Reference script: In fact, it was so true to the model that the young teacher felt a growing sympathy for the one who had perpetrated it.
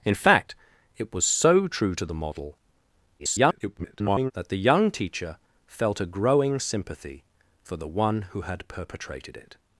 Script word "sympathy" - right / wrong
right